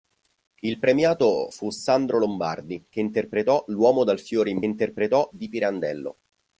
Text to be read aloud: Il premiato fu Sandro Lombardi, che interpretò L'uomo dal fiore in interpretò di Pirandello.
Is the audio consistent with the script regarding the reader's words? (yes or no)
yes